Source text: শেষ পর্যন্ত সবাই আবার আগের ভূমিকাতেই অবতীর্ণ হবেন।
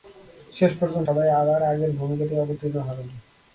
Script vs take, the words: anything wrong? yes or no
no